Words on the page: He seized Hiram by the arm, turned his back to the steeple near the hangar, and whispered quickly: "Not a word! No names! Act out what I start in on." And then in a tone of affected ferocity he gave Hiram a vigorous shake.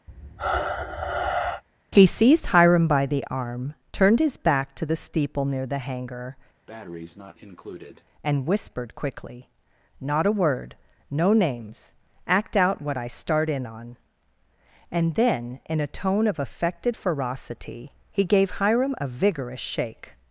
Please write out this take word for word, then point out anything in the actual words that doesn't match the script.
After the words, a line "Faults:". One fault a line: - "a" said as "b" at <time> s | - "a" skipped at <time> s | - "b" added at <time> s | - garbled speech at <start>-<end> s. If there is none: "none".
He seized Hiram by the arm, turned his back to the steeple near the hangar, and whispered quickly: "Not a word! No names! Act out what I start in on." And then in a tone of affected ferocity he gave Hiram a vigorous shake.
Faults:
none